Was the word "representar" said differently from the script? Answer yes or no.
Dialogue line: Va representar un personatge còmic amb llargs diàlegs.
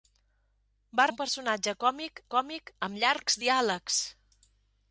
yes